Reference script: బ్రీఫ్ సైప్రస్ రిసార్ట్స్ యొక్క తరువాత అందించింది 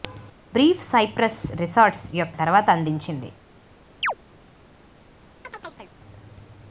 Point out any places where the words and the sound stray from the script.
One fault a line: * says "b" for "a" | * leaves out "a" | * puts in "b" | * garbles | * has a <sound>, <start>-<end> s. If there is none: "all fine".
* has a chirp, 4.0-4.1 s
* has a chirp, 5.4-5.9 s